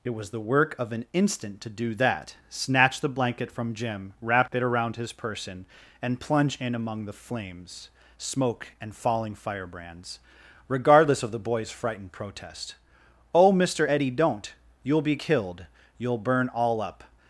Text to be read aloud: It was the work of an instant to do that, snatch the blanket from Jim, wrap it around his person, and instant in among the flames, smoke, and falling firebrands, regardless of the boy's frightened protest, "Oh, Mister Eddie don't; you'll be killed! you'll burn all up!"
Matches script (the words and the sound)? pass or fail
fail